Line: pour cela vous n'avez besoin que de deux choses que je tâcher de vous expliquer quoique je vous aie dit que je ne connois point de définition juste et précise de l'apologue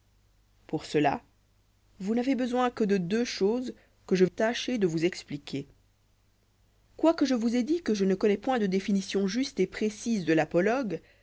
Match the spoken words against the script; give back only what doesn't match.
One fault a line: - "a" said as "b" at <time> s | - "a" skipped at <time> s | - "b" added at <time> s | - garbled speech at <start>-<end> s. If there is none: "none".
none